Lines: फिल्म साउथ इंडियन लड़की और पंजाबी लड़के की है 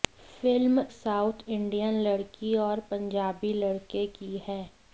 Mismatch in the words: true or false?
false